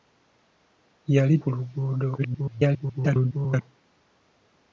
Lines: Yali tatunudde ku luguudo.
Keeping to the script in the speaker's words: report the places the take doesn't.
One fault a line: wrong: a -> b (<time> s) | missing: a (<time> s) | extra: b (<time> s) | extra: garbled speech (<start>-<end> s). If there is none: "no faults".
missing: tatunudde (1.4 s)
extra: garbled speech (2.2-3.6 s)